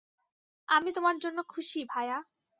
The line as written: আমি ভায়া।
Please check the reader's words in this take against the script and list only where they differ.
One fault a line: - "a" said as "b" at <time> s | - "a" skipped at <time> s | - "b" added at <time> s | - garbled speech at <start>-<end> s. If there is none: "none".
- "তোমার জন্য খুশি" added at 0.9 s